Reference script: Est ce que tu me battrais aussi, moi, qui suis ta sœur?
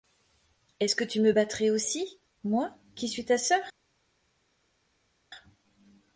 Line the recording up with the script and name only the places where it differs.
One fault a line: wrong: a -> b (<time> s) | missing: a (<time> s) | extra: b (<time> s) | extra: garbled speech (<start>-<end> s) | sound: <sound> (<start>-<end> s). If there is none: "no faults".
no faults